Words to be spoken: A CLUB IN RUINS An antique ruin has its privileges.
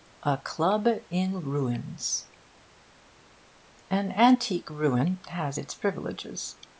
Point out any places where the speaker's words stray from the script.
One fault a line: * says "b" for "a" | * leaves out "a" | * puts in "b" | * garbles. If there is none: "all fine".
all fine